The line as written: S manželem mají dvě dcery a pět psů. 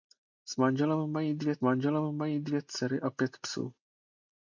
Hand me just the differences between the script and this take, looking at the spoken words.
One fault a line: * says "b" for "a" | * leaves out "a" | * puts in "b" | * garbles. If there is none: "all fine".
* puts in "manželem mají dvě"